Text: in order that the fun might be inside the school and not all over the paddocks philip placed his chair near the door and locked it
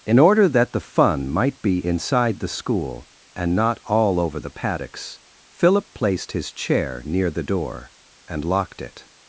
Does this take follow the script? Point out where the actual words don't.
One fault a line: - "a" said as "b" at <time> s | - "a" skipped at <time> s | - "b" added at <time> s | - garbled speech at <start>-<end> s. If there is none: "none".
none